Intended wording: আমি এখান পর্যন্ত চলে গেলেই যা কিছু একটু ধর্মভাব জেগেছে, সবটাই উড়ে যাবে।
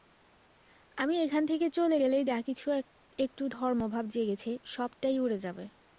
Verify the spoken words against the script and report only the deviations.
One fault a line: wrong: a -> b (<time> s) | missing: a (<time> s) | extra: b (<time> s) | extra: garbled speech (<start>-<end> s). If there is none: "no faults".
wrong: পর্যন্ত -> থেকে (1.4 s)